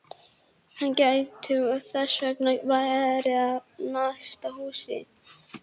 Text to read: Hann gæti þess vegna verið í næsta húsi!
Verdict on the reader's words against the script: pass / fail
pass